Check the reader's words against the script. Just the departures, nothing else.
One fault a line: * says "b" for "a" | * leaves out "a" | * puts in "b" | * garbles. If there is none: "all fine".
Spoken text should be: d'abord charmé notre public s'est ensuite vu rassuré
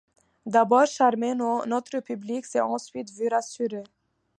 all fine